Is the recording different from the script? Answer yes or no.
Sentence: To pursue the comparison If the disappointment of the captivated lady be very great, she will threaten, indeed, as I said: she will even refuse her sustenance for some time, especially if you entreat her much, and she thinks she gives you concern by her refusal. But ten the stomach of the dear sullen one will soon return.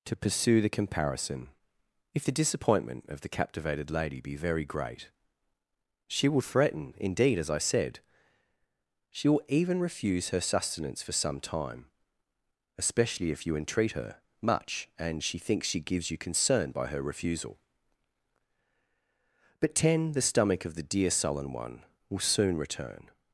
no